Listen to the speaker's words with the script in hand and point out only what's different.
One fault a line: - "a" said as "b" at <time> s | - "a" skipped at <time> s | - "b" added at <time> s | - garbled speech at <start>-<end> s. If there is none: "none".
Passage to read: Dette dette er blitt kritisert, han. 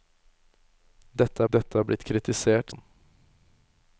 none